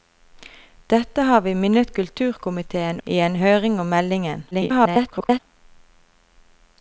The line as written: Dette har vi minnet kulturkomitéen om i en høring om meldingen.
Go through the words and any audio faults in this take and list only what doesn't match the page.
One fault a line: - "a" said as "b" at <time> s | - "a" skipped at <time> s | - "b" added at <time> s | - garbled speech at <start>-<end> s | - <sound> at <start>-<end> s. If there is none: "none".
- "om" skipped at 3.0 s
- garbled speech at 4.5-5.4 s